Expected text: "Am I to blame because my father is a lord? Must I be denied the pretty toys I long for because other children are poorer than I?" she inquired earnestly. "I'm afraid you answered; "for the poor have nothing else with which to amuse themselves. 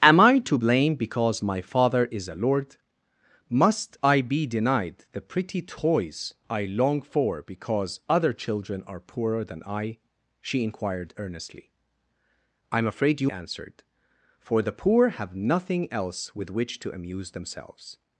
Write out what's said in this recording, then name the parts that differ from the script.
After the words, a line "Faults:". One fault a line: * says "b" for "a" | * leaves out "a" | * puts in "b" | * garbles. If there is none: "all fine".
"Am I to blame because my father is a lord? Must I be denied the pretty toys I long for because other children are poorer than I?" she inquired earnestly. "I'm afraid you answered; "for the poor have nothing else with which to amuse themselves.
Faults:
all fine